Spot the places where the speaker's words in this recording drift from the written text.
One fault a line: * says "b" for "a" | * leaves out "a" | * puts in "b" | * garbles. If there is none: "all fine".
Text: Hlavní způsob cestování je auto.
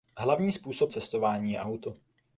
all fine